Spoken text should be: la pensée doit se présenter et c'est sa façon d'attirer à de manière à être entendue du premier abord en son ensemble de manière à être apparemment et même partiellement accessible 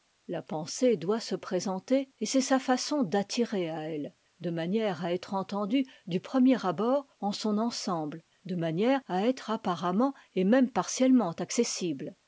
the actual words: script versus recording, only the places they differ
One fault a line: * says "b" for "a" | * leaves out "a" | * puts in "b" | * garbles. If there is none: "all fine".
* puts in "elle"